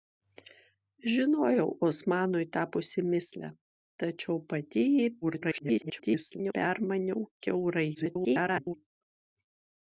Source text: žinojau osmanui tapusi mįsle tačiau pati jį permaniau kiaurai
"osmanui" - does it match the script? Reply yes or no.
yes